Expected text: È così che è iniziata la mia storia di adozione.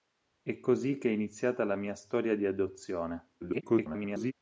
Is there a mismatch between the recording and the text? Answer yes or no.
yes